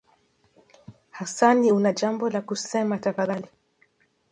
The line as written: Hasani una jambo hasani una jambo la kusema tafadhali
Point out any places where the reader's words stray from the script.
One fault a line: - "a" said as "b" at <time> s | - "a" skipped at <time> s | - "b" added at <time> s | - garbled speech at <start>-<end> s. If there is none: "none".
- "hasani una jambo" skipped at 2.3 s